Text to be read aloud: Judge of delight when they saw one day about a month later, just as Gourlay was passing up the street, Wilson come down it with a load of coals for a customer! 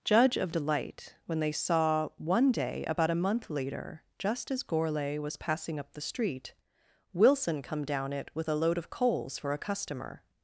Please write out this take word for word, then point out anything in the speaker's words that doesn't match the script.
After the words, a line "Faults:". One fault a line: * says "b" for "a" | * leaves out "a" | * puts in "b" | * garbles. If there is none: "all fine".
Judge of delight when they saw one day about a month later, just as Gourlay was passing up the street, Wilson come down it with a load of coals for a customer!
Faults:
all fine